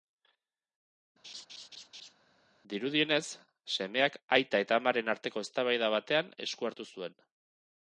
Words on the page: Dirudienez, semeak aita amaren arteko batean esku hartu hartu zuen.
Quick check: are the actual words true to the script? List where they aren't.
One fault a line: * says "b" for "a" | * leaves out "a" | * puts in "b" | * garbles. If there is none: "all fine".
* puts in "eta"
* puts in "eztabaida"
* leaves out "hartu"